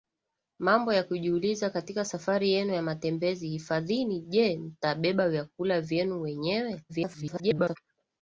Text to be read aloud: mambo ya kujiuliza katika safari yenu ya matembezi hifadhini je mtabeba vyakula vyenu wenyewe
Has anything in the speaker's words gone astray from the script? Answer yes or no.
yes